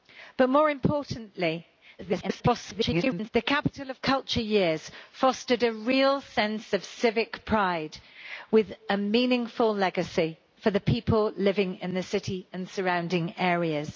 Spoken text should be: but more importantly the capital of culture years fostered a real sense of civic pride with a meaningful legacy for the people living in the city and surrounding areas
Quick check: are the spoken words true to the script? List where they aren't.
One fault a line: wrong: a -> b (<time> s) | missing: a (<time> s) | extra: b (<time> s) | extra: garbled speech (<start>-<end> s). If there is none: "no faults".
extra: garbled speech (2.0-3.3 s)